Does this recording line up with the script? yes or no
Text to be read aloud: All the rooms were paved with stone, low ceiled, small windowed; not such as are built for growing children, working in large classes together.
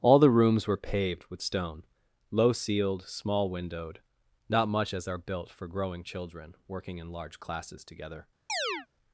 no